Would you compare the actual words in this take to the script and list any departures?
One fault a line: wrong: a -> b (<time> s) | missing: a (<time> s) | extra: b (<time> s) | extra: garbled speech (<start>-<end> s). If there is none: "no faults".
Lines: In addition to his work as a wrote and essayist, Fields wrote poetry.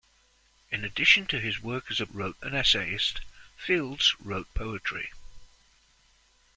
no faults